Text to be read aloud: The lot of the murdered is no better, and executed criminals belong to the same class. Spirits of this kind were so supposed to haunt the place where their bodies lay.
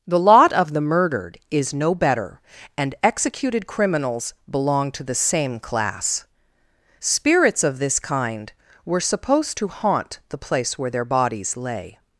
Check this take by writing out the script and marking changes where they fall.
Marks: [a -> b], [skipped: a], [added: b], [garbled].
The lot of the murdered is no better, and executed criminals belong to the same class. Spirits of this kind were [skipped: so] supposed to haunt the place where their bodies lay.